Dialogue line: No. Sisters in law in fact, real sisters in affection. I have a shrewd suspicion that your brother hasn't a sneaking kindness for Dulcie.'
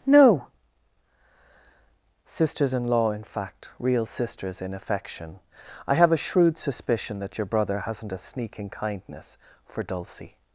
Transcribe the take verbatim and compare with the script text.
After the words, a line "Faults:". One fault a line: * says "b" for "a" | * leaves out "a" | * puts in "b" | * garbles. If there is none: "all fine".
No. Sisters in law in fact, real sisters in affection. I have a shrewd suspicion that your brother hasn't a sneaking kindness for Dulcie.'
Faults:
all fine